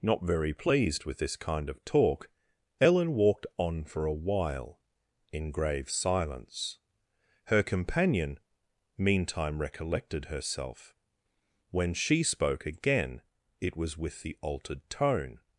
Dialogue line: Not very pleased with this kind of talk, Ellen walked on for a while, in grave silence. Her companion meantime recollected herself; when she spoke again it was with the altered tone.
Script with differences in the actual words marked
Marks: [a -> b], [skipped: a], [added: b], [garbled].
Not very pleased with this kind of talk, Ellen walked on for a while, in grave silence. Her companion meantime recollected herself; when she spoke again it was with the altered tone.